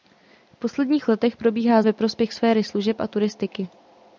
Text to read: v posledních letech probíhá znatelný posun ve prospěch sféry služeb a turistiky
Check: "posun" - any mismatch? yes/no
yes